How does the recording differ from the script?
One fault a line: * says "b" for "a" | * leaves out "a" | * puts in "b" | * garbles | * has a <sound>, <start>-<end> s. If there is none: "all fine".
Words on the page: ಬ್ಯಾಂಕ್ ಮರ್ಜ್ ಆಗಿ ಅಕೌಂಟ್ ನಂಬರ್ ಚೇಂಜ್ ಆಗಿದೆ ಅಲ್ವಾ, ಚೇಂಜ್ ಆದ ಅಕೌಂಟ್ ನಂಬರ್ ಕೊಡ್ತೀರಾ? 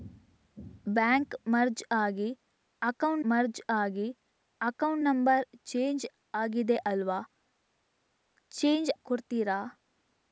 * puts in "ಮರ್ಜ್ ಆಗಿ ಅಕೌಂಟ್"
* leaves out "ಆದ ಅಕೌಂಟ್ ನಂಬರ್"